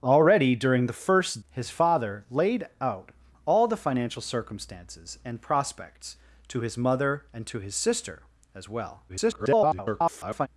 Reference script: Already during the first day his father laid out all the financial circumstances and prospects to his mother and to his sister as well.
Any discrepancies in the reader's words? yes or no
yes